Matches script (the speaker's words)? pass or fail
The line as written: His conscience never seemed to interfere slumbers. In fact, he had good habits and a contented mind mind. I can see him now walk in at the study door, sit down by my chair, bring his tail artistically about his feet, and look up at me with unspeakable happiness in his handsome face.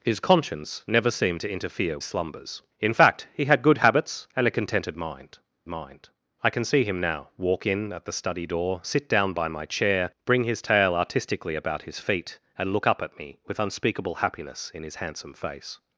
pass